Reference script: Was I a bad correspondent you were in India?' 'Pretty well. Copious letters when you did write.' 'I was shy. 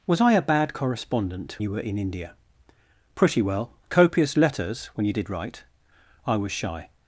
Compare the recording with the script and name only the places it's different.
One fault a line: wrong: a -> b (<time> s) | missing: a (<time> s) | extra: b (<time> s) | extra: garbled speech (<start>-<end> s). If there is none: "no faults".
no faults